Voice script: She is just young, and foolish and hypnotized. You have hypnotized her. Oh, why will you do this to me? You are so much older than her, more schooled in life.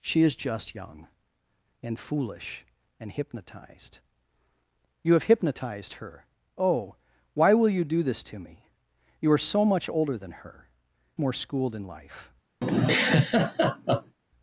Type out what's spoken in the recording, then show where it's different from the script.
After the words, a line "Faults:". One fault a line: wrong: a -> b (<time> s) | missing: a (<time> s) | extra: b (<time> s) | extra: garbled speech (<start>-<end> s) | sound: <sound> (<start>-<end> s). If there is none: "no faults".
She is just young, and foolish and hypnotized. You have hypnotized her. Oh, why will you do this to me? You are so much older than her, more schooled in life.
Faults:
sound: laugh (12.6-14.2 s)